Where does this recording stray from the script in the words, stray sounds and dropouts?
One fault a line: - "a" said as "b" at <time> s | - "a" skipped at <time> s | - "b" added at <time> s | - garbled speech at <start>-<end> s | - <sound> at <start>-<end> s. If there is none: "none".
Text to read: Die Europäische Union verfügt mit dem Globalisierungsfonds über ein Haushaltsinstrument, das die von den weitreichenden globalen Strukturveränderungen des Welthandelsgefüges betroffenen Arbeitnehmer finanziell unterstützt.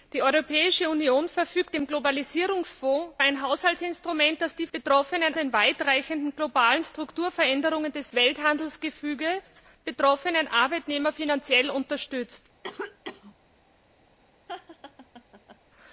- "mit" skipped at 1.7 s
- "über" skipped at 3.1 s
- "von" said as "betroffenen" at 4.7 s
- cough at 12.6-13.3 s
- laugh at 14.5-15.6 s